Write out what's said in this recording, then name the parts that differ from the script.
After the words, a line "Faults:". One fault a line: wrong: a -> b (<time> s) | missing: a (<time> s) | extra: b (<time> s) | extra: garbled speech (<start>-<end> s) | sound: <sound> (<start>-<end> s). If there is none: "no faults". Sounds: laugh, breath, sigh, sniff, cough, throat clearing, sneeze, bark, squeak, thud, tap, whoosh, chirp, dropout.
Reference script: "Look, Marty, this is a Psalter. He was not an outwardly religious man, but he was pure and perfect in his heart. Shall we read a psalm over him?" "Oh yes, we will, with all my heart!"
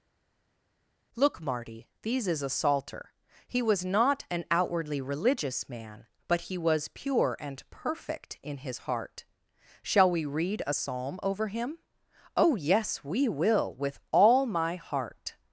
"Look, Marty, these is a Psalter. He was not an outwardly religious man, but he was pure and perfect in his heart. Shall we read a psalm over him?" "Oh yes, we will, with all my heart!"
Faults:
wrong: this -> these (2.0 s)